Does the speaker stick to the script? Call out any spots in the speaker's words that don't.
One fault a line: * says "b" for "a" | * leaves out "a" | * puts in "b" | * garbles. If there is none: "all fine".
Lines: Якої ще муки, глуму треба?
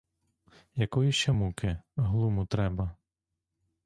all fine